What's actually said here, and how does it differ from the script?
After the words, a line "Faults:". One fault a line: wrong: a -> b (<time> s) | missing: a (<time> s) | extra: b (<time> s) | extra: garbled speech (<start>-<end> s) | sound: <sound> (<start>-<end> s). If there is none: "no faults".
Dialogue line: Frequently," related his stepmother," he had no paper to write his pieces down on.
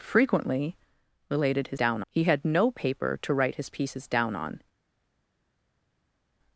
Frequently," related his down," he had no paper to write his pieces down on.
Faults:
wrong: stepmother -> down (1.8 s)